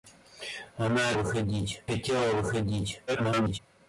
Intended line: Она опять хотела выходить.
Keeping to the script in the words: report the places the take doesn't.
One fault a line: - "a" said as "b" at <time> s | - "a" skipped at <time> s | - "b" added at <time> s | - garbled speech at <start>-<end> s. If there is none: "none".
- "опять" said as "выходить" at 1.1 s
- garbled speech at 3.1-3.6 s